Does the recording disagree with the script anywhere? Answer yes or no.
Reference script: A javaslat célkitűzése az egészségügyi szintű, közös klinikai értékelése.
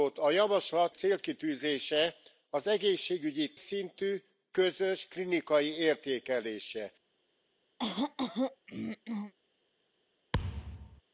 no